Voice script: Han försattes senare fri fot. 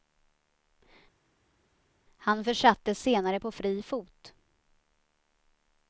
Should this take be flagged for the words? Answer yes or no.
yes